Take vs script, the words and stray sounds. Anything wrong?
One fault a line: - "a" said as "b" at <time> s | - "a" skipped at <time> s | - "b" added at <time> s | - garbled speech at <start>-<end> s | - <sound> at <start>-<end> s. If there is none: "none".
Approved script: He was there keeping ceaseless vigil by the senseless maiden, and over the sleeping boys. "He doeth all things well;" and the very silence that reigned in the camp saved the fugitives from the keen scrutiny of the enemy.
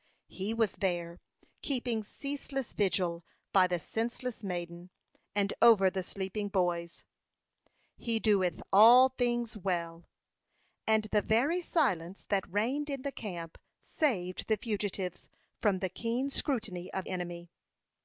- "the" skipped at 17.0 s